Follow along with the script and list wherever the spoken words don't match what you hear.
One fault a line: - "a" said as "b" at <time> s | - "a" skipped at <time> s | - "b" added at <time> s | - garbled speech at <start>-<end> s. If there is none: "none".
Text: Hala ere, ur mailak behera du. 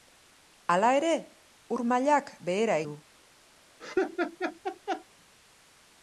none